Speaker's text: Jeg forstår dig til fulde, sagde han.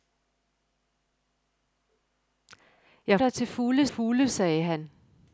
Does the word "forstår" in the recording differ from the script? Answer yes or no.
yes